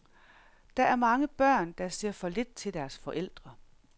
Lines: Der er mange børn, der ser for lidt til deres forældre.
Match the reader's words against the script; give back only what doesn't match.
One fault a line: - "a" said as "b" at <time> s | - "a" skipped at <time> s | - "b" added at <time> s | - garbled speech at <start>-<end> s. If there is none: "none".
none